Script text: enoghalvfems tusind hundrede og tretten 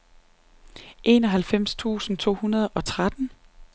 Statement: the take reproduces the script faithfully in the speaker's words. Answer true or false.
false